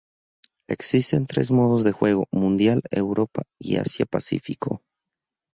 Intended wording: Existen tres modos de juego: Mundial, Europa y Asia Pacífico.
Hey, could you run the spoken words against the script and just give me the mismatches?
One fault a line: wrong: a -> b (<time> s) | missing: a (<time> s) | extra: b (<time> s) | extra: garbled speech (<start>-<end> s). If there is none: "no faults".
no faults